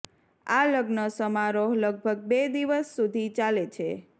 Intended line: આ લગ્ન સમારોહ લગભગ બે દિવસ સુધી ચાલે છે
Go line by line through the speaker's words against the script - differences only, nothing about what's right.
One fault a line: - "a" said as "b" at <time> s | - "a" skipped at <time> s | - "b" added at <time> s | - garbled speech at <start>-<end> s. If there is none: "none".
none